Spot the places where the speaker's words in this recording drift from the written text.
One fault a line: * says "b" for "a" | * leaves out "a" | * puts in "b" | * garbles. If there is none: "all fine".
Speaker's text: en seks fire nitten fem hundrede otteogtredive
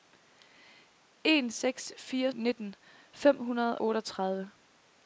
all fine